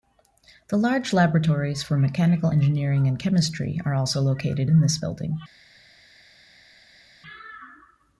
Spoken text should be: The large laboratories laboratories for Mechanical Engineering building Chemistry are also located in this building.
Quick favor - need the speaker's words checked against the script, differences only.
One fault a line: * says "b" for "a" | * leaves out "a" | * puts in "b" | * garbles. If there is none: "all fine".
* leaves out "laboratories"
* says "and" for "building"